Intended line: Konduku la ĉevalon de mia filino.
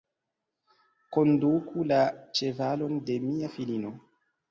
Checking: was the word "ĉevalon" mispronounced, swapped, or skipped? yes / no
no